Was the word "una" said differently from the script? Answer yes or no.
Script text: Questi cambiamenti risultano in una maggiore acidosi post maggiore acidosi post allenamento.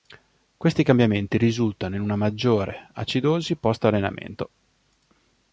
no